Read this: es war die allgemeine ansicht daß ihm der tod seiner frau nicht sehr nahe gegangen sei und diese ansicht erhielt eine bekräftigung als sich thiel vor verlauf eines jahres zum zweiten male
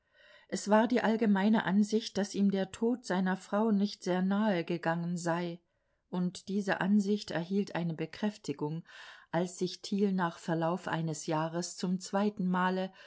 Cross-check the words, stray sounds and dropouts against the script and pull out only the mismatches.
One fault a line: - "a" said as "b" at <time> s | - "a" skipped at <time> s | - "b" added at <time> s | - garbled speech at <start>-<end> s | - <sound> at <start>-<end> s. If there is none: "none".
- "vor" said as "nach" at 10.1 s